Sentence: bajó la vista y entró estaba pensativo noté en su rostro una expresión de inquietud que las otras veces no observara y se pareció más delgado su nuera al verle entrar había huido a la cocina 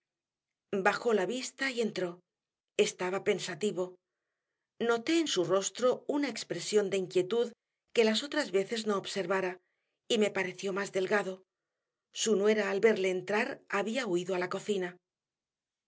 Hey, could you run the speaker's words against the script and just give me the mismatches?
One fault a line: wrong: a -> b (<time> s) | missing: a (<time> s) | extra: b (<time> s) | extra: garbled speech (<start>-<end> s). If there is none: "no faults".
wrong: se -> me (10.2 s)